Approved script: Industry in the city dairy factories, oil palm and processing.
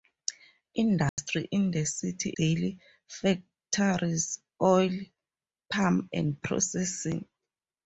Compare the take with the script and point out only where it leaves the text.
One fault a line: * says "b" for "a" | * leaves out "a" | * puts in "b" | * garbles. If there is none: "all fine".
all fine